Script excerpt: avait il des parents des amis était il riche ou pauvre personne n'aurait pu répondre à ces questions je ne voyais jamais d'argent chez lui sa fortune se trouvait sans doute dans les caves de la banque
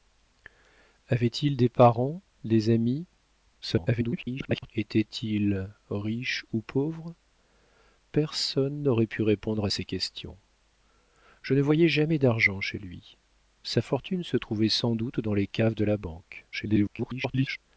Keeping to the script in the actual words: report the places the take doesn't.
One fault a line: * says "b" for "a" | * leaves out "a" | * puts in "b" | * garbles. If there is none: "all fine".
* garbles
* garbles